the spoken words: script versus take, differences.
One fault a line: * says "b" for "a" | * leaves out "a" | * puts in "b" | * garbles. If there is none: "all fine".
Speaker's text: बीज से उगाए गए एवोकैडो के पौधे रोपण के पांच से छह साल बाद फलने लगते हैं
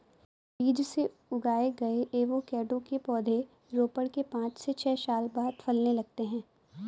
all fine